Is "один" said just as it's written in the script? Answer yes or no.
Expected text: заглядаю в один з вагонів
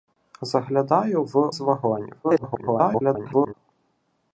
no